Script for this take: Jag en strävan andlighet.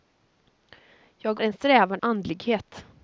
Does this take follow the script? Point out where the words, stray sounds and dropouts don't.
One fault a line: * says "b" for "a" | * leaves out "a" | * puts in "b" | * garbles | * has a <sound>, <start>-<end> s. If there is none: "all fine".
all fine